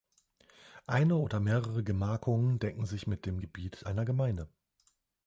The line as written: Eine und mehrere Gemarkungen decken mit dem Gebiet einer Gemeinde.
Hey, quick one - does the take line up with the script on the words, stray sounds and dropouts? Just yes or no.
no